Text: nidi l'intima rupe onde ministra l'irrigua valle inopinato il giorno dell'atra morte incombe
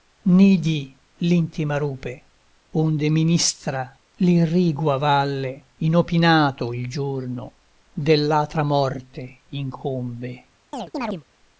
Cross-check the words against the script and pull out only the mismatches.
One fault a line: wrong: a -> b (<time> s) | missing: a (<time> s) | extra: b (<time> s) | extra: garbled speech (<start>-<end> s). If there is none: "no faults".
no faults